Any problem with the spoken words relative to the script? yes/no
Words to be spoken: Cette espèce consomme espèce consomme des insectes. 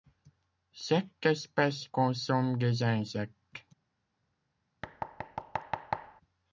yes